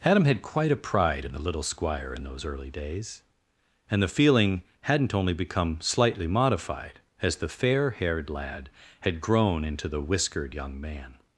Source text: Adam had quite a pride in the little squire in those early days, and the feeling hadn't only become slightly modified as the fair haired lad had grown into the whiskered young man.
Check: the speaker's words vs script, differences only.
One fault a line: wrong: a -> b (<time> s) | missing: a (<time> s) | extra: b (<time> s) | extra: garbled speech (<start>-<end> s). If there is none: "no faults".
no faults